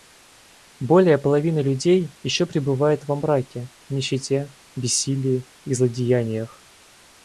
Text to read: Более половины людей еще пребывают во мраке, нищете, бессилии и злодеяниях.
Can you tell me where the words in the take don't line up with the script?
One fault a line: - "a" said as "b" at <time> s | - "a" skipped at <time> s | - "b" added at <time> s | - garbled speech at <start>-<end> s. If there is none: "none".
none